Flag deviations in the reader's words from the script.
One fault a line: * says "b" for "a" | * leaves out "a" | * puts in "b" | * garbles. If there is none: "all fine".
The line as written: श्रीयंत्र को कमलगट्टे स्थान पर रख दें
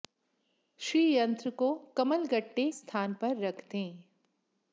all fine